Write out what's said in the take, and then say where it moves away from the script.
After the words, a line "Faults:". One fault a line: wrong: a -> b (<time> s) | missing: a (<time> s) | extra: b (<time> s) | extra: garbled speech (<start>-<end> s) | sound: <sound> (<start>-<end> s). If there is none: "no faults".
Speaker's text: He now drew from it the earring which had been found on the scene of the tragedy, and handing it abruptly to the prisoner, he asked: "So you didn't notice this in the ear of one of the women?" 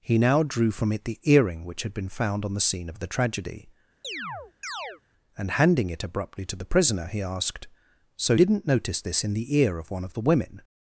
He now drew from it the earring which had been found on the scene of the tragedy, and handing it abruptly to the prisoner, he asked: "So didn't notice this in the ear of one of the women?"
Faults:
sound: chirp (4.0-5.0 s)
missing: you (8.3 s)